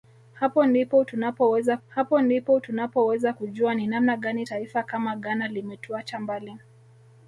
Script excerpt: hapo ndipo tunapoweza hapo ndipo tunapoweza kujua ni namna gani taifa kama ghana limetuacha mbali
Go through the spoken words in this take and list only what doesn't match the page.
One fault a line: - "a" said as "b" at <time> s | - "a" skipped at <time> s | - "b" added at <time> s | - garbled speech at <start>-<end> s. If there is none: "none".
none